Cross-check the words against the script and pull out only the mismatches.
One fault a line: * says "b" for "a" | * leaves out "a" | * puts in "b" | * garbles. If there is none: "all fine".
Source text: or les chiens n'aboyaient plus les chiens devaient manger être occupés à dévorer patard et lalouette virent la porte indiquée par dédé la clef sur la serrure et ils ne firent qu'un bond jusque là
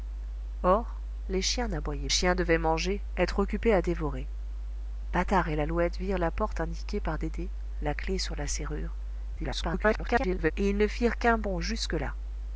* leaves out "plus les"
* garbles